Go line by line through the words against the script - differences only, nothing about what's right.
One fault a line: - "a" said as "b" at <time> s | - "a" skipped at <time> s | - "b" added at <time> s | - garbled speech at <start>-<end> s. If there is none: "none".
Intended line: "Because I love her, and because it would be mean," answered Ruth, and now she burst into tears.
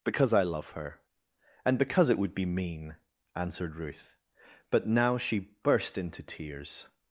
- "and" said as "but" at 4.7 s